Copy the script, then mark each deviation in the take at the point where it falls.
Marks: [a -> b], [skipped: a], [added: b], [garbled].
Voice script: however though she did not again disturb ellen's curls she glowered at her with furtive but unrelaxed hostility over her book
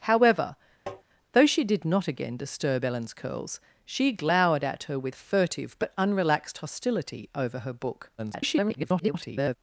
however though she did not again disturb ellen's curls she glowered at her with furtive but unrelaxed hostility over her book [garbled]